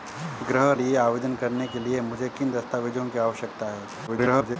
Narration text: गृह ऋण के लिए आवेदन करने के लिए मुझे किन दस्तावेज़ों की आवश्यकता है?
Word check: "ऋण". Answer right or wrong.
wrong